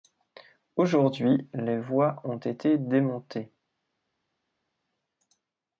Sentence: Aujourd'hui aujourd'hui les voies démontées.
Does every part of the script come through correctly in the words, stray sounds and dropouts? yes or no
no